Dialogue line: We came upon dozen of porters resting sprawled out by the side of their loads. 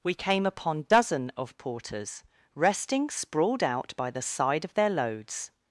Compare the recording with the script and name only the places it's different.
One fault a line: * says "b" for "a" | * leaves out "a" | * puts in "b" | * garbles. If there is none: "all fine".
all fine